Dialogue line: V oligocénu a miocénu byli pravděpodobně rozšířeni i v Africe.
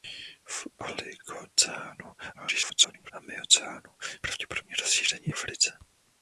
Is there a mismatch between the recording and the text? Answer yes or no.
yes